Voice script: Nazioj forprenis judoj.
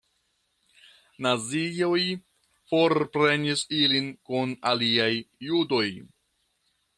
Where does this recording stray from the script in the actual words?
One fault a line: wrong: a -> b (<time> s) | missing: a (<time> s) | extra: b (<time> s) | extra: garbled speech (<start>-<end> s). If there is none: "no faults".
extra: ilin kun aliaj (3.8 s)